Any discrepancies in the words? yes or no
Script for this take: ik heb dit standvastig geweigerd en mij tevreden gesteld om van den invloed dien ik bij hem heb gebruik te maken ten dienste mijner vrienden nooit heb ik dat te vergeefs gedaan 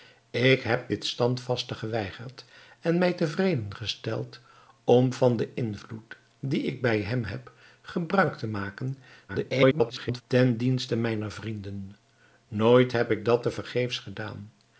yes